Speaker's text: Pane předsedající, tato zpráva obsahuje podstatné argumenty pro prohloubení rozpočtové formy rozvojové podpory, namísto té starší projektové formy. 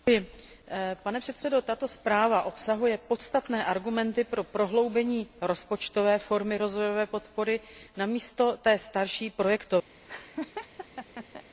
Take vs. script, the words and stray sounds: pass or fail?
fail